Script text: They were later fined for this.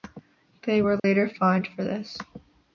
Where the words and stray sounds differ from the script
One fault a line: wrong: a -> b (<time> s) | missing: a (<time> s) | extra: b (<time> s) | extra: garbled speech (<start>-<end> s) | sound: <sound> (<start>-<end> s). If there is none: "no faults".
sound: dropout (1.0-1.0 s)